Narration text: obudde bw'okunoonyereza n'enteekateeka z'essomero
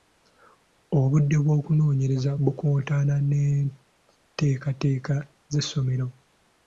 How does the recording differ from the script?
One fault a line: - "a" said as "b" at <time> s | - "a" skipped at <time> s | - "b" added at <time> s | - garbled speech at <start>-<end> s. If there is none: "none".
- "bukontana" added at 2.4 s